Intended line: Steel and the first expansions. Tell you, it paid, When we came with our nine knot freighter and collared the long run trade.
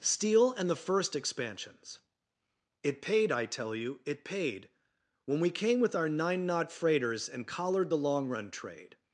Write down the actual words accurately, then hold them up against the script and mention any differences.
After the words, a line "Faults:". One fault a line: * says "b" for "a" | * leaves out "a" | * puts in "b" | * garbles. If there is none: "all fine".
Steel and the first expansions. It paid, I tell you, it paid, When we came with our nine knot freighters and collared the long run trade.
Faults:
* puts in "It paid I"
* says "freighters" for "freighter"